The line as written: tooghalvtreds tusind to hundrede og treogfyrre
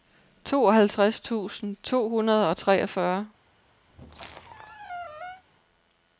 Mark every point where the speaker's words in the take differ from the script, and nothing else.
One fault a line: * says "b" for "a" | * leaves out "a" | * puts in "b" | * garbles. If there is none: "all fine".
all fine